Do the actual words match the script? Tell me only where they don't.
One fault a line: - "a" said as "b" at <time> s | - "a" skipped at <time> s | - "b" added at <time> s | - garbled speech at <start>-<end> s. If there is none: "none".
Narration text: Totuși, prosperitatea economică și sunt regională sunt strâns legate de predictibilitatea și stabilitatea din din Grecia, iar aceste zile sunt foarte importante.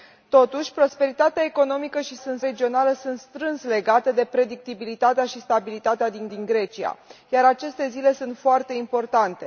none